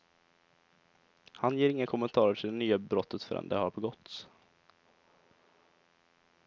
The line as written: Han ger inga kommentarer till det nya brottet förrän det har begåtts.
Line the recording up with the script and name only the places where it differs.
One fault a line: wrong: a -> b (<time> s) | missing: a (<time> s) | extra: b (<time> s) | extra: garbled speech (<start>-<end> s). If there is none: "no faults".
no faults